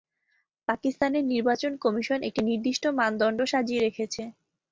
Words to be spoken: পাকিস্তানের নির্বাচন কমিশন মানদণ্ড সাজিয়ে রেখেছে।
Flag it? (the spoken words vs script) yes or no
yes